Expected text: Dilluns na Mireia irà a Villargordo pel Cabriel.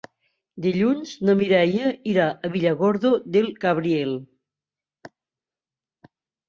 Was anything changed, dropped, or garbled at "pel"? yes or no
yes